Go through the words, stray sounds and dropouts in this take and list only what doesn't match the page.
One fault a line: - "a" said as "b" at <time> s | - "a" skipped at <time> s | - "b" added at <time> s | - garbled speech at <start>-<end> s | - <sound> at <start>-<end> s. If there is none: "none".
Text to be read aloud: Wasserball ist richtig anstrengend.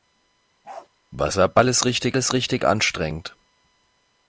- bark at 0.6-0.9 s
- "ist richtig" added at 2.2 s